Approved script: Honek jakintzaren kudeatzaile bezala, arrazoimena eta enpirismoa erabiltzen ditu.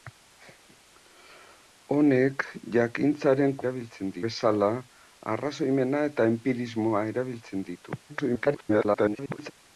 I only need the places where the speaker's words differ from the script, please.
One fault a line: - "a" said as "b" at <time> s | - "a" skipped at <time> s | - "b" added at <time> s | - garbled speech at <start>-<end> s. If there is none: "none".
- "kudeatzaile" said as "erabiltzen" at 3.6 s
- garbled speech at 8.1-9.5 s